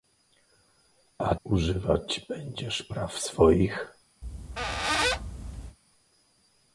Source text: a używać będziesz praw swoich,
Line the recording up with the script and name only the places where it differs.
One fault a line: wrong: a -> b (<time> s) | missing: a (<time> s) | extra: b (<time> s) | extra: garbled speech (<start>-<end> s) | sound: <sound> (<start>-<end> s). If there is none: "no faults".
sound: squeak (4.2-5.8 s)